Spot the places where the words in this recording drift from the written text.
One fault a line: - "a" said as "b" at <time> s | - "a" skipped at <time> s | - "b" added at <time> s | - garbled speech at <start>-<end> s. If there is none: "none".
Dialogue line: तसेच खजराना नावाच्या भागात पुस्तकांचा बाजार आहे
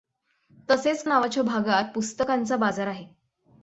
- "खजराना" skipped at 1.1 s